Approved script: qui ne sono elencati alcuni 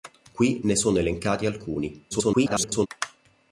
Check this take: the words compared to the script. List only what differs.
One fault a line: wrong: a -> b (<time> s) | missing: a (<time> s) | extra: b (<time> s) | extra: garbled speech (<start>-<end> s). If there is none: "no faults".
extra: garbled speech (2.1-2.9 s)